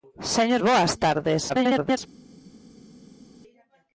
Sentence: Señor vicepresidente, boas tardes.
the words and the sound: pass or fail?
fail